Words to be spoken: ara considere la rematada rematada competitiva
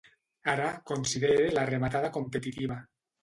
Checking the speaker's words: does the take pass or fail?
fail